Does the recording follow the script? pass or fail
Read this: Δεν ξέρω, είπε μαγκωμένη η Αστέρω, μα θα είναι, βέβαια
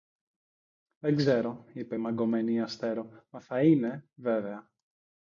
pass